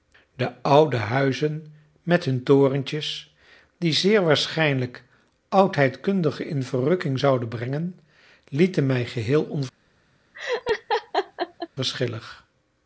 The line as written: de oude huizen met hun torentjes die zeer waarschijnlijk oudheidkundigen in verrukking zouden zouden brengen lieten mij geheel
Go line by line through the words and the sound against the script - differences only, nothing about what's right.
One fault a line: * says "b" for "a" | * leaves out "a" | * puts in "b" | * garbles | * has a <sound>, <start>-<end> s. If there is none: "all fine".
* leaves out "zouden"
* has a laugh, 10.3-11.7 s